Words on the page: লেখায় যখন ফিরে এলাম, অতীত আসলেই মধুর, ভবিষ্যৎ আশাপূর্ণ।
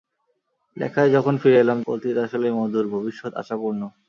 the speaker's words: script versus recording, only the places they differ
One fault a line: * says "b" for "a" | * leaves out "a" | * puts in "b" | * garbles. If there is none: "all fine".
all fine